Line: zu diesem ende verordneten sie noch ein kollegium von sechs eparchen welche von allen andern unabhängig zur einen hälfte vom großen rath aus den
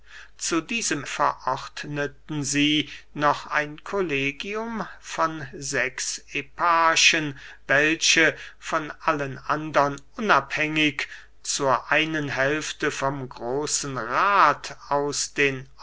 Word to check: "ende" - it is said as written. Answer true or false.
false